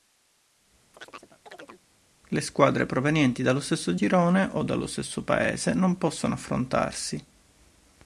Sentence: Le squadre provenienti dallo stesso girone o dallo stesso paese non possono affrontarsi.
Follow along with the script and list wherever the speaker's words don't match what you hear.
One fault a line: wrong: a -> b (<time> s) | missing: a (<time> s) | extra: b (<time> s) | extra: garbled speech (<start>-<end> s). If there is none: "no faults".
no faults